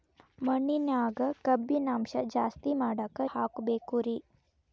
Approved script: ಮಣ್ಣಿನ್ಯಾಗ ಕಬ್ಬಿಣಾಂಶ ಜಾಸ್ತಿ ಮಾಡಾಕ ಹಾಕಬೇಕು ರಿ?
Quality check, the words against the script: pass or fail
pass